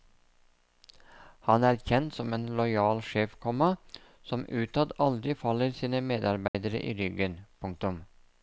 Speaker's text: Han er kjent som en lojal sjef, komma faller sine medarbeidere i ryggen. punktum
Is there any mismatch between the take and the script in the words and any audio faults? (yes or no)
yes